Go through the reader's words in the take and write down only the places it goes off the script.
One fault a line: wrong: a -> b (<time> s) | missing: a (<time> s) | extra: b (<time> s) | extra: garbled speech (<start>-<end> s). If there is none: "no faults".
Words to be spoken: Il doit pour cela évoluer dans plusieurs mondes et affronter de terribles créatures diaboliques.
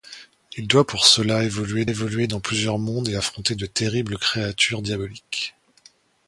extra: évoluer (1.9 s)